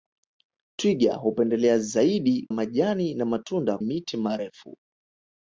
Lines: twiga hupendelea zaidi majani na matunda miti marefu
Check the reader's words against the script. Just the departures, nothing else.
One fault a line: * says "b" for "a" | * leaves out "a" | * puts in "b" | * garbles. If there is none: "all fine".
all fine